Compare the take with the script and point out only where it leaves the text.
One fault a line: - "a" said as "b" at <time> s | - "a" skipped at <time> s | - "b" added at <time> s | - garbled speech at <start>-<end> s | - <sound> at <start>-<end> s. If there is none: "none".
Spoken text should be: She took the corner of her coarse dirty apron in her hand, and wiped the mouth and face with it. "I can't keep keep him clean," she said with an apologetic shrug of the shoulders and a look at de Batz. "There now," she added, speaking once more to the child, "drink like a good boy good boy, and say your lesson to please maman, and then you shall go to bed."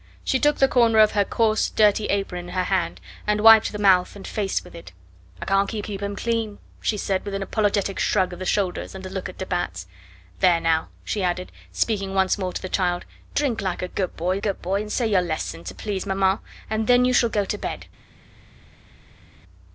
none